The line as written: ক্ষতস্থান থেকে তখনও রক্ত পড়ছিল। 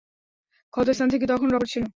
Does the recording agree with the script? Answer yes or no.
no